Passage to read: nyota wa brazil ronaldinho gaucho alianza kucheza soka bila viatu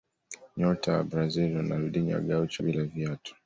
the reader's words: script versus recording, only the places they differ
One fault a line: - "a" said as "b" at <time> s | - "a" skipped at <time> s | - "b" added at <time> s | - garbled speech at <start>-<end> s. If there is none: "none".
- "alianza kucheza soka" skipped at 2.6 s